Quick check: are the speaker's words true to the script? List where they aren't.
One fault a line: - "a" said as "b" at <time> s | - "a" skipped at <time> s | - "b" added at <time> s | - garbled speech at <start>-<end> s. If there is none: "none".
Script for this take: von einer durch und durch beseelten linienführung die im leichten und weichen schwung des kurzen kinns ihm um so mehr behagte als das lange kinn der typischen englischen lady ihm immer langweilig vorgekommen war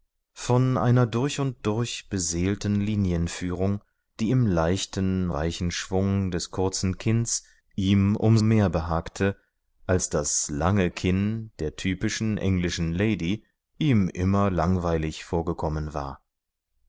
- "und" skipped at 5.3 s
- "so" skipped at 8.4 s